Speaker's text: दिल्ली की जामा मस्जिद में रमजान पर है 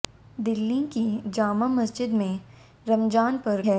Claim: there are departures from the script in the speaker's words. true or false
false